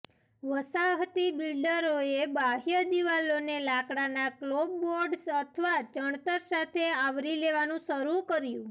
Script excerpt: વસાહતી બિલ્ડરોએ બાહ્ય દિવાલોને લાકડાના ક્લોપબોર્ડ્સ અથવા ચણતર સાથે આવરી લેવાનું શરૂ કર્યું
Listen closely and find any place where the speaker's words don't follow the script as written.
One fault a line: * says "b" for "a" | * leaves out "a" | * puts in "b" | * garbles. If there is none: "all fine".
all fine